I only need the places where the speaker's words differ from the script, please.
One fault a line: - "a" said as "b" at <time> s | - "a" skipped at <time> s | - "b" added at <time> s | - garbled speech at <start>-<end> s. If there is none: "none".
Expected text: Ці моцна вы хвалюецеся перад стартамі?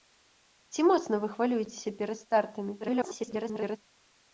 - garbled speech at 2.8-3.8 s